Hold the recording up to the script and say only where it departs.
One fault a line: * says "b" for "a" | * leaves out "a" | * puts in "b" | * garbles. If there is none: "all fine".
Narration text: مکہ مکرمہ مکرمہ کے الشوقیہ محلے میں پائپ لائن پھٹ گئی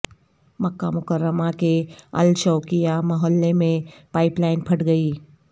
* leaves out "مکرمہ"